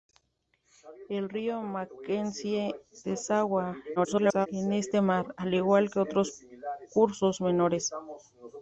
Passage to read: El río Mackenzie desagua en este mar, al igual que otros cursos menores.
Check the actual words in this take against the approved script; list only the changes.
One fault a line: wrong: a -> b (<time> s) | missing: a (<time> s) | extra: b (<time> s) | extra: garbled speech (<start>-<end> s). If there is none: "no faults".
extra: garbled speech (4.0-4.5 s)